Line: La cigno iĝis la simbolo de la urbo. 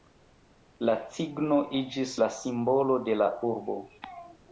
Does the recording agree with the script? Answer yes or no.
yes